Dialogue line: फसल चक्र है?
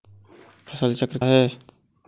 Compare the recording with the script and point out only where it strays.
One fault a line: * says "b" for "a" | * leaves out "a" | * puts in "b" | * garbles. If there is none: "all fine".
all fine